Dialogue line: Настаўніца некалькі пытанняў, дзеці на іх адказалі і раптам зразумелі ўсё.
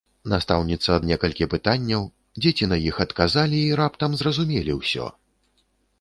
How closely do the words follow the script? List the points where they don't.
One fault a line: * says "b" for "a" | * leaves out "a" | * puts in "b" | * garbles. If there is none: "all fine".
all fine